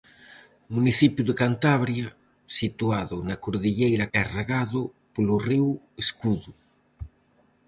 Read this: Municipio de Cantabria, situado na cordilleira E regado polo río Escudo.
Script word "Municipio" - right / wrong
right